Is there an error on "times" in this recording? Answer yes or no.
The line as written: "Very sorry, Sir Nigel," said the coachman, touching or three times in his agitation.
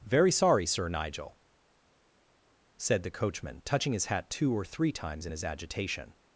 no